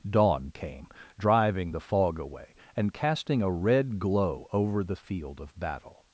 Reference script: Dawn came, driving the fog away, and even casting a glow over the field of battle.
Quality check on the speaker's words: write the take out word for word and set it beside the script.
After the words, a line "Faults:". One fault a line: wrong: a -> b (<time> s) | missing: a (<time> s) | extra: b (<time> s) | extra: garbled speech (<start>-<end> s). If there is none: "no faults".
Dawn came, driving the fog away, and casting a red glow over the field of battle.
Faults:
missing: even (2.9 s)
extra: red (3.5 s)